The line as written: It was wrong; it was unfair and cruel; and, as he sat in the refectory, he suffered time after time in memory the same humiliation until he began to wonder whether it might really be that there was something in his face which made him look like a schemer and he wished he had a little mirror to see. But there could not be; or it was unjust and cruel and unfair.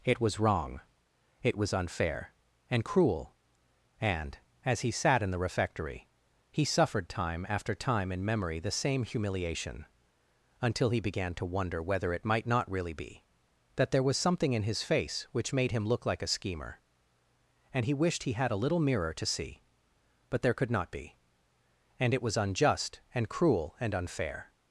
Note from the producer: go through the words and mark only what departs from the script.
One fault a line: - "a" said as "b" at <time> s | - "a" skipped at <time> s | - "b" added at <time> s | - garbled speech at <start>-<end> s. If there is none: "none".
- "not" added at 12.5 s
- "or" said as "and" at 22.0 s